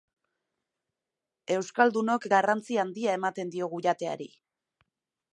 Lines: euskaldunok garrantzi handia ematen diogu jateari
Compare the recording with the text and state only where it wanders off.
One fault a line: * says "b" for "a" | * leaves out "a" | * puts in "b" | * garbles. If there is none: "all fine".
all fine